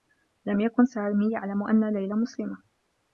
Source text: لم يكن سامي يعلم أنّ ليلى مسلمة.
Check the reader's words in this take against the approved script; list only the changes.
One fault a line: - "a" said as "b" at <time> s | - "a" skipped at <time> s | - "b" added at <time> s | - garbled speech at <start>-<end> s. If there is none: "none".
none